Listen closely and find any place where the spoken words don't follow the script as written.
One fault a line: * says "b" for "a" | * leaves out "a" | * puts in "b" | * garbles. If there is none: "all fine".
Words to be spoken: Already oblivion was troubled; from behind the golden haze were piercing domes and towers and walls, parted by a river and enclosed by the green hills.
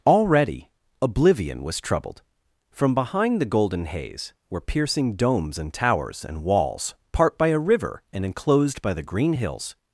* says "part" for "parted"